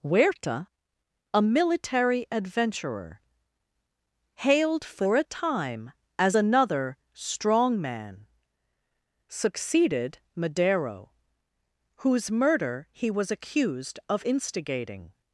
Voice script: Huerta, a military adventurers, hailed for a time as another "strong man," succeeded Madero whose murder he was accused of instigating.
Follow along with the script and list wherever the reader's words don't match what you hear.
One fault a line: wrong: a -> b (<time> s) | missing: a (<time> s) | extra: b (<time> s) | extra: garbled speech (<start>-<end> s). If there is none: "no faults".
wrong: adventurers -> adventurer (2.3 s)